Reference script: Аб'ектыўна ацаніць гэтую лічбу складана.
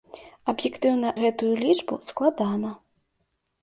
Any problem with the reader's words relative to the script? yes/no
yes